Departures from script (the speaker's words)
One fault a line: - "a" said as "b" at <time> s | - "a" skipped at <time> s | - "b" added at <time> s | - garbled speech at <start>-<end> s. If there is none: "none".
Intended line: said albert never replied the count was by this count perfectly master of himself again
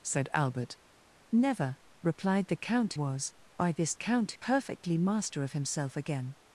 none